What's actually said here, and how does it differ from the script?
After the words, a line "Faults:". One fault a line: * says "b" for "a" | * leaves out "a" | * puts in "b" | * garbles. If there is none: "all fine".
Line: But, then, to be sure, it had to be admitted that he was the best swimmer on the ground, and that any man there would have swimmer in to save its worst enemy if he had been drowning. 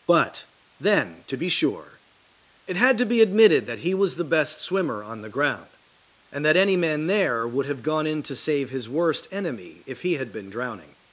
But, then, to be sure, it had to be admitted that he was the best swimmer on the ground, and that any man there would have gone in to save his worst enemy if he had been drowning.
Faults:
* says "gone" for "swimmer"
* says "his" for "its"